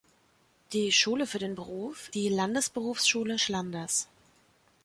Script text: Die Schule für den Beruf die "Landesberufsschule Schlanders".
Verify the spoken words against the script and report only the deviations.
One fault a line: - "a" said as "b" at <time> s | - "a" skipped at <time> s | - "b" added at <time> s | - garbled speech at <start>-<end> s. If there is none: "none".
none